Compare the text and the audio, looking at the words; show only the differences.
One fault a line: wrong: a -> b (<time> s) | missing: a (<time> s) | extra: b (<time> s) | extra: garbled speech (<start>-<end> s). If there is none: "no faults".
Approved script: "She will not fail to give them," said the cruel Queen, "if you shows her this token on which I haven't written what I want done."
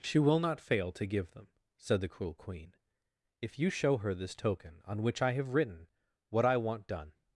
wrong: shows -> show (3.7 s)
wrong: haven't -> have (5.3 s)